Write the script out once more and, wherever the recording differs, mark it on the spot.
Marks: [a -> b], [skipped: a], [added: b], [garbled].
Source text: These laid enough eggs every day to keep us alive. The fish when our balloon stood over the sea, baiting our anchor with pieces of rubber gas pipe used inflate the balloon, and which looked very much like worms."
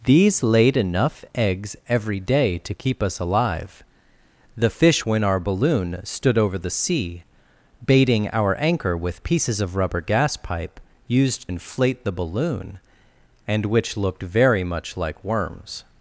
These laid enough eggs every day to keep us alive. The fish when our balloon stood over the sea, baiting our anchor with pieces of rubber gas pipe used inflate the balloon, and which looked very much like worms."